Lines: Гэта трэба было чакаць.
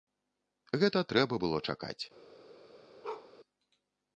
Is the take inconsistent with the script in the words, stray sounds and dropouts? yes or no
yes